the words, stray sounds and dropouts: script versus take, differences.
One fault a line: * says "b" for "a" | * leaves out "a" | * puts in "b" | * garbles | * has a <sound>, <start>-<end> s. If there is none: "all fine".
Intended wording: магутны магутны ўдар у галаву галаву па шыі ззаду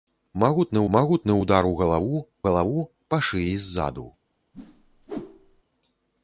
* has a whoosh, 4.5-5.6 s